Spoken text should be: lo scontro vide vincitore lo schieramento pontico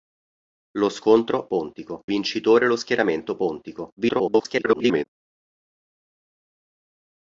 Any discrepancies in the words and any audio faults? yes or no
yes